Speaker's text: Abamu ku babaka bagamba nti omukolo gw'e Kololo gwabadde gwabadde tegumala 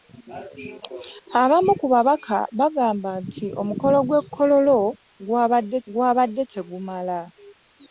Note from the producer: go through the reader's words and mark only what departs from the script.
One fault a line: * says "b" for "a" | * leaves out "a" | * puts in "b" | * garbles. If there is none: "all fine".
all fine